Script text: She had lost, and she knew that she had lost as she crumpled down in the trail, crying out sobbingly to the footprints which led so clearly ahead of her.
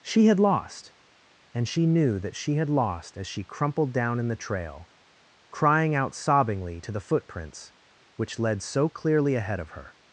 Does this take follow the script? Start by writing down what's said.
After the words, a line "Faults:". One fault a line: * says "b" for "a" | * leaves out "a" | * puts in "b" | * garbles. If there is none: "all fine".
She had lost, and she knew that she had lost as she crumpled down in the trail, crying out sobbingly to the footprints which led so clearly ahead of her.
Faults:
all fine